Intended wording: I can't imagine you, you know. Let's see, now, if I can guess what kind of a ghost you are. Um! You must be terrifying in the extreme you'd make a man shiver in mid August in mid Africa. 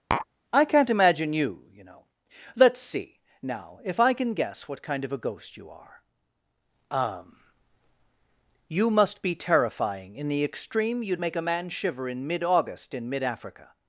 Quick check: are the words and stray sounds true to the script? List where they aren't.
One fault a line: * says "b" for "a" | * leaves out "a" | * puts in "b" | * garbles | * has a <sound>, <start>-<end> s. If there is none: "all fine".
* has a tap, 0.1-0.3 s